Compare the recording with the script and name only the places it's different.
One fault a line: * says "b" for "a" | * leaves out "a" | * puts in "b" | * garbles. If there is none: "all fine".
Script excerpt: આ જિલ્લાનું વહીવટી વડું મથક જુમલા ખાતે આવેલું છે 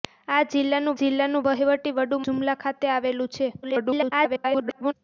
* puts in "જિલ્લાનું"
* leaves out "મથક"
* garbles